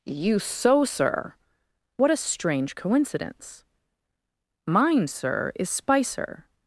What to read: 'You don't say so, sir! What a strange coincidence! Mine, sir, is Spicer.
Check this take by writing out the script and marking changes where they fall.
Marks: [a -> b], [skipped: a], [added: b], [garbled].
'You [skipped: don't say] so, sir! What a strange coincidence! Mine, sir, is Spicer.